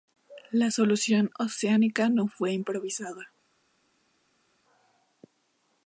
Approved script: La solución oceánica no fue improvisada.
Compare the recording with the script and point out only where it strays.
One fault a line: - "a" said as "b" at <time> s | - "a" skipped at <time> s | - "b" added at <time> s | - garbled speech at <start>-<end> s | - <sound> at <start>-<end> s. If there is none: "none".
none